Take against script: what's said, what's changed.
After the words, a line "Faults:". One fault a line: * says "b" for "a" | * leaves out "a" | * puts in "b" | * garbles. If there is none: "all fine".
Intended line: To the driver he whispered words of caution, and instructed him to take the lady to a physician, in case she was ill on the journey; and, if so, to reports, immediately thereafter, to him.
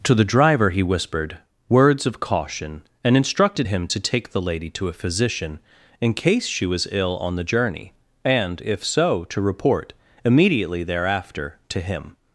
To the driver he whispered words of caution, and instructed him to take the lady to a physician, in case she was ill on the journey; and, if so, to report, immediately thereafter, to him.
Faults:
* says "report" for "reports"